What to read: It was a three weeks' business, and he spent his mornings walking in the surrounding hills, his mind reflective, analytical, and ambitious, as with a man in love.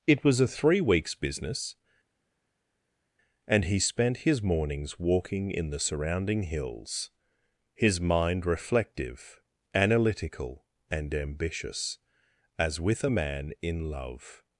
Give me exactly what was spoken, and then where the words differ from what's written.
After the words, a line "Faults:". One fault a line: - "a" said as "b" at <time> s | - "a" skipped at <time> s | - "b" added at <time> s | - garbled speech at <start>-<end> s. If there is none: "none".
It was a three weeks' business, and he spent his mornings walking in the surrounding hills, his mind reflective, analytical, and ambitious, as with a man in love.
Faults:
none